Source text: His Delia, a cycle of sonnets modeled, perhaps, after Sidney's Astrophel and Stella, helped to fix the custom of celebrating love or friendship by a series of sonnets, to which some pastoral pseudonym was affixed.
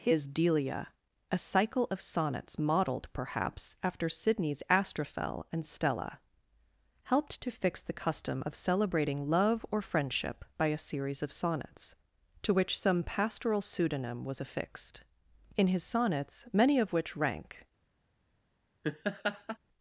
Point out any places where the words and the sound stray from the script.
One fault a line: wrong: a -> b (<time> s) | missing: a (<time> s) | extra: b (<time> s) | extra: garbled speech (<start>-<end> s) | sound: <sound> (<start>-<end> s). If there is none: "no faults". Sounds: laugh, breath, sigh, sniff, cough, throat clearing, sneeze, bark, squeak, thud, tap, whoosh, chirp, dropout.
extra: In his sonnets many of which rank (15.6 s)
sound: laugh (18.8-19.6 s)